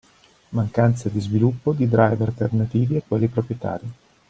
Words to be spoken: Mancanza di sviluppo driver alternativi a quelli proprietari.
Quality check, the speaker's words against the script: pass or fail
fail